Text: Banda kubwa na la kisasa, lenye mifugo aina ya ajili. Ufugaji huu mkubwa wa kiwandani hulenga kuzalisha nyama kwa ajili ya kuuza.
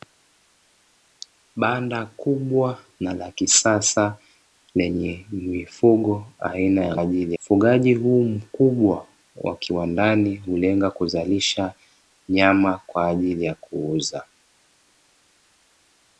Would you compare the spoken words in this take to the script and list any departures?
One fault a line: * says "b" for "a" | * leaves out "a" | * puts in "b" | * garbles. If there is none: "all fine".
all fine